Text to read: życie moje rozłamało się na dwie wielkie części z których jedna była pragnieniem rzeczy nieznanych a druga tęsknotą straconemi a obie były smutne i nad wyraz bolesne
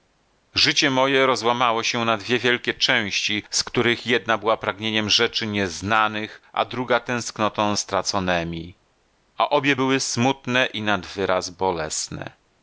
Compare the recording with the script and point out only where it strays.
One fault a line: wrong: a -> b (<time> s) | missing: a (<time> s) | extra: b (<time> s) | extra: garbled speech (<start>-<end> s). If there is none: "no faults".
no faults